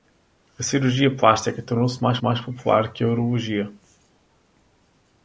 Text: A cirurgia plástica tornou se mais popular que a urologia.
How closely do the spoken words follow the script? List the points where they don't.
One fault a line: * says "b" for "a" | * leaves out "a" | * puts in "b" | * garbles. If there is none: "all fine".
* puts in "mais"